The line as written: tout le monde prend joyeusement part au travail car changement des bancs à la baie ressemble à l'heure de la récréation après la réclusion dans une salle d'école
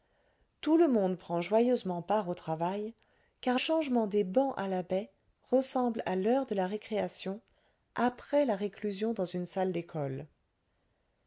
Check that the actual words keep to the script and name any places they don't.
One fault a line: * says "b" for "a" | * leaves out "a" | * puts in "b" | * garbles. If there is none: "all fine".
all fine